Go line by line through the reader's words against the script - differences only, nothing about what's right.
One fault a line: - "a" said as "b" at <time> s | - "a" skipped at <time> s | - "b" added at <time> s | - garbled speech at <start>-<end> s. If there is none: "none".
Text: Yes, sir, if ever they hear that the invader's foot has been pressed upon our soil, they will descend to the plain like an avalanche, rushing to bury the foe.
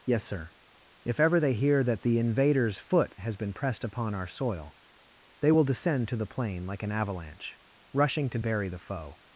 none